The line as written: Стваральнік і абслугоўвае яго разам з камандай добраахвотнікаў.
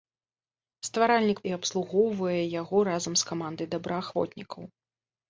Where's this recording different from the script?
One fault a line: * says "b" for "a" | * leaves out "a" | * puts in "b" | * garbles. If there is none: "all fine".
all fine